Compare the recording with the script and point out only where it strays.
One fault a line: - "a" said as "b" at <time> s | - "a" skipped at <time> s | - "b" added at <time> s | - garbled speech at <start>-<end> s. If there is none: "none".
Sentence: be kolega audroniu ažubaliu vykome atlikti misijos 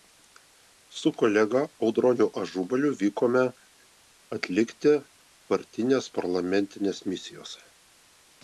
- "be" said as "su" at 1.0 s
- "partinės parlamentinės" added at 5.5 s